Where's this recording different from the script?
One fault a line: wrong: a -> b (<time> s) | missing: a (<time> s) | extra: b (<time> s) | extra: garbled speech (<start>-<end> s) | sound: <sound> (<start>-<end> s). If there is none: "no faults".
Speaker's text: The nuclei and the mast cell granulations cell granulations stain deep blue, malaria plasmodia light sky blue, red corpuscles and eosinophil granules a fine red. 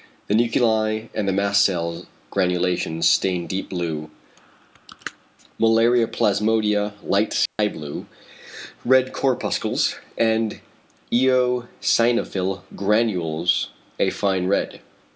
missing: cell granulations (3.1 s)
sound: dropout (7.5-7.6 s)